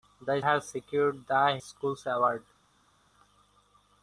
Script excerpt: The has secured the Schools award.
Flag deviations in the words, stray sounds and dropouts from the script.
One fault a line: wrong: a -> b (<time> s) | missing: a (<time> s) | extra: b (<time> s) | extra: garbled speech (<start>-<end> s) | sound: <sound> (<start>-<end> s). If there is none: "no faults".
no faults